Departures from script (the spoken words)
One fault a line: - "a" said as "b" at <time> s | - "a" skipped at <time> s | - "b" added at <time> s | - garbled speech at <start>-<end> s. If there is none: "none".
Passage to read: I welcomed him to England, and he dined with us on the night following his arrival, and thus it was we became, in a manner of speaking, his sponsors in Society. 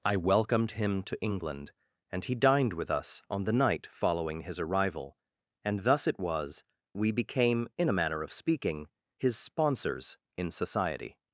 none